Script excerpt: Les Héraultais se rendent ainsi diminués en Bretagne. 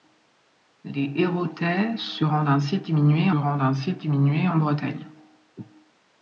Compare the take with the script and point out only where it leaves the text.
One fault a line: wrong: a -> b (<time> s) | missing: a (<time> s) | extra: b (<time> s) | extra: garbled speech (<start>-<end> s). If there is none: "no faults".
extra: rendent ainsi diminués (3.3 s)